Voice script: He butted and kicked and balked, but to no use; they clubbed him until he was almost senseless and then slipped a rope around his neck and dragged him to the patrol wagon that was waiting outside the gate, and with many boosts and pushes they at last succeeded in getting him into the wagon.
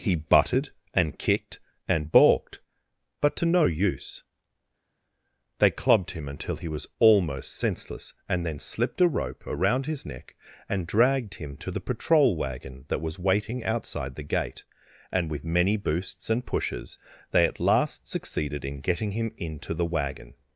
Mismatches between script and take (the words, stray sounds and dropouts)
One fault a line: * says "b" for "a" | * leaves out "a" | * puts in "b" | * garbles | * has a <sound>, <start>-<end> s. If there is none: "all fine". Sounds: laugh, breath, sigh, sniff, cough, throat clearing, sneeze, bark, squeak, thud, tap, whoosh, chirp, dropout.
all fine